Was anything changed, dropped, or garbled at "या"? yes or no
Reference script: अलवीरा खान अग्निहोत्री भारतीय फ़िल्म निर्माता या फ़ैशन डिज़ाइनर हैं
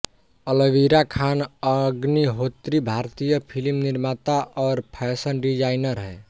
yes